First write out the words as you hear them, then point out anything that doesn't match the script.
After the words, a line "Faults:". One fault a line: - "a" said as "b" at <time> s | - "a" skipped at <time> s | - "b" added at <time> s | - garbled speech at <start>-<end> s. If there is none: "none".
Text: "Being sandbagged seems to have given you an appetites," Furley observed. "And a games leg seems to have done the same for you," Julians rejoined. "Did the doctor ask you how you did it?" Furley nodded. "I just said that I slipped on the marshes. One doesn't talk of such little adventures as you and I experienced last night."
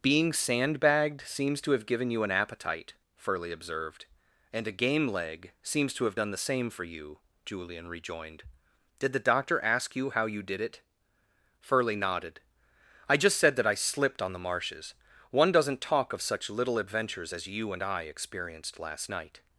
"Being sandbagged seems to have given you an appetite," Furley observed. "And a game leg seems to have done the same for you," Julian rejoined. "Did the doctor ask you how you did it?" Furley nodded. "I just said that I slipped on the marshes. One doesn't talk of such little adventures as you and I experienced last night."
Faults:
- "appetites" said as "appetite" at 2.3 s
- "games" said as "game" at 4.7 s
- "Julians" said as "Julian" at 7.4 s